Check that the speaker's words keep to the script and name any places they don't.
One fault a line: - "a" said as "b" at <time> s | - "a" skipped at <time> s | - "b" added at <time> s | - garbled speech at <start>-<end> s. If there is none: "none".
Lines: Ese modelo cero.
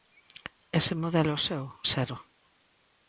- "seu" added at 1.5 s